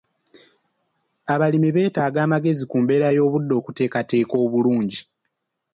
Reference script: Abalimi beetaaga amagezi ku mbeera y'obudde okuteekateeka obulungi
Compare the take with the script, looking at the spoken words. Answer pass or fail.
pass